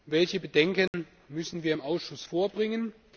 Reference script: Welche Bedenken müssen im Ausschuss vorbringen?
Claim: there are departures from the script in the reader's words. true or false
true